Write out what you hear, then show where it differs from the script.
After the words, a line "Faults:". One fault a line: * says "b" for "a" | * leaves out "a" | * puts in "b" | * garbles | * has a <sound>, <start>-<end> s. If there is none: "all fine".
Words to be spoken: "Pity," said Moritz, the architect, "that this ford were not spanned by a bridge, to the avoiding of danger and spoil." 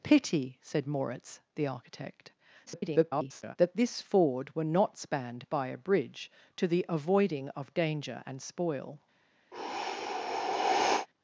"Pity," said Moritz, the architect, [garbled] "that this ford were not spanned by a bridge, to the avoiding of danger and spoil."
Faults:
* garbles
* has a sigh, 9.5-11.1 s